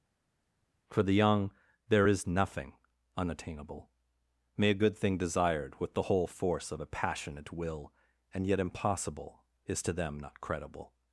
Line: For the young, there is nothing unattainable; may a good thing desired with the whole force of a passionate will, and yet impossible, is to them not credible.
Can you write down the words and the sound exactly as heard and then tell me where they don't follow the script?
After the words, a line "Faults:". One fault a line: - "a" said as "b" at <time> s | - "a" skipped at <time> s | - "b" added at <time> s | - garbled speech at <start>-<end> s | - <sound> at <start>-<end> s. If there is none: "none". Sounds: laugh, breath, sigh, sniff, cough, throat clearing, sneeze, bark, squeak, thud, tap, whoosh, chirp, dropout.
For the young, there is nothing unattainable; may a good thing desired with the whole force of a passionate will, and yet impossible, is to them not credible.
Faults:
none